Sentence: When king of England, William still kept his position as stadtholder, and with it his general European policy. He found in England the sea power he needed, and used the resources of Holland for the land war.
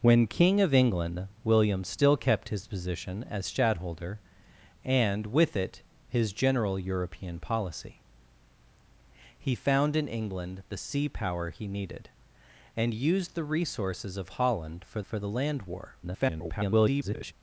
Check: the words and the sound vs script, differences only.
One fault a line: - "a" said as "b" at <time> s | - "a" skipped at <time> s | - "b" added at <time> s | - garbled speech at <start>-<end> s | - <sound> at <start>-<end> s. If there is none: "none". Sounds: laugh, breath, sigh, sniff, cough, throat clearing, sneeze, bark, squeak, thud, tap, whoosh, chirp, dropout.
- "for" added at 15.0 s
- garbled speech at 16.0-17.3 s